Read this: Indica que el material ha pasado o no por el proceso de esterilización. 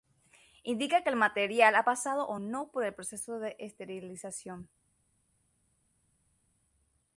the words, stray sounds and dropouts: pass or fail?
pass